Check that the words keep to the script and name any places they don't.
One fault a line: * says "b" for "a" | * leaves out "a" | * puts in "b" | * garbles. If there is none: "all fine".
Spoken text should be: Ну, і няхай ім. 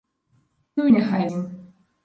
all fine